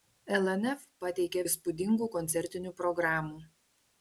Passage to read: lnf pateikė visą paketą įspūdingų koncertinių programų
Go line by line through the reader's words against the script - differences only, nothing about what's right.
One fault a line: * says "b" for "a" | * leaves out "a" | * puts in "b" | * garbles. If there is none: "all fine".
* leaves out "visą paketą"